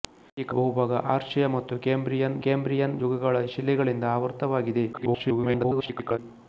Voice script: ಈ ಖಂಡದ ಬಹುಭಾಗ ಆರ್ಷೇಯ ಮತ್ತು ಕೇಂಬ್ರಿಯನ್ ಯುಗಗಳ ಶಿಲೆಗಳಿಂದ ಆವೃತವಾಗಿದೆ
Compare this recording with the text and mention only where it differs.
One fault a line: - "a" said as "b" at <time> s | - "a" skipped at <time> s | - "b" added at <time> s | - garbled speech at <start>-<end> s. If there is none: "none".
- "ಖಂಡದ" skipped at 0.5 s
- "ಕೇಂಬ್ರಿಯನ್" added at 2.4 s
- garbled speech at 4.9-6.2 s